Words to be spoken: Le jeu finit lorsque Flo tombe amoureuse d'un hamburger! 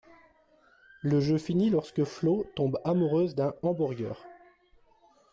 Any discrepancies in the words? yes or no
no